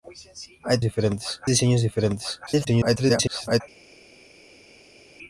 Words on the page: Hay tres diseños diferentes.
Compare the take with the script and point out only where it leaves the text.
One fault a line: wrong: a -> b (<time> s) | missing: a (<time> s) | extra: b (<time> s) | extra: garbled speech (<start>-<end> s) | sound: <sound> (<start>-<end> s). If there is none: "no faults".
wrong: tres -> diferentes (0.8 s)
extra: garbled speech (2.5-3.6 s)